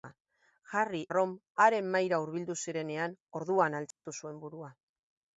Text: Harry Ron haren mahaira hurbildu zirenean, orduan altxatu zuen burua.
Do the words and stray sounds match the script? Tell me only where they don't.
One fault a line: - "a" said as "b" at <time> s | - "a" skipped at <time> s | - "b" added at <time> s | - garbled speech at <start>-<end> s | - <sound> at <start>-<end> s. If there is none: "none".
- dropout at 3.9-4.1 s